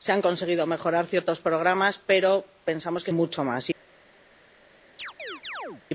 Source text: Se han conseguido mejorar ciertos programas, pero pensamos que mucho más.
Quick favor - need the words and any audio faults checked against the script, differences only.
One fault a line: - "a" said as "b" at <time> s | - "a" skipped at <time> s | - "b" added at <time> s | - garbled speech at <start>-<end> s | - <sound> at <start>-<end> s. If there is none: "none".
- chirp at 5.0-5.8 s